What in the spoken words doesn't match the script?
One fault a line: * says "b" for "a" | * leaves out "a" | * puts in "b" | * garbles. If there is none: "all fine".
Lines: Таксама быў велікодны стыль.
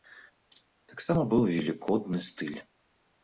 all fine